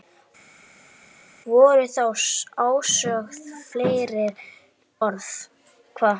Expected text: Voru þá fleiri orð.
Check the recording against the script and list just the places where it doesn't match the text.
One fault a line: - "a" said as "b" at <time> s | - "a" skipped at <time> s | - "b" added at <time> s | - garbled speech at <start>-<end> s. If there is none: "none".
- "ósögð" added at 2.6 s